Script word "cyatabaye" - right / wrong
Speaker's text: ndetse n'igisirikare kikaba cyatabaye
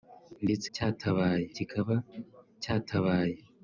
right